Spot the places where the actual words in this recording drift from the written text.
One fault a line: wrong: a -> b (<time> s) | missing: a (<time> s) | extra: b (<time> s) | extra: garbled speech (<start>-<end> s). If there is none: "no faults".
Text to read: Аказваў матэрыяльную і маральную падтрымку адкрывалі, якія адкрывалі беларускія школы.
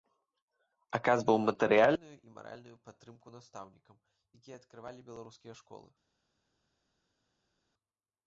wrong: адкрывалі -> настаўнікам (3.4 s)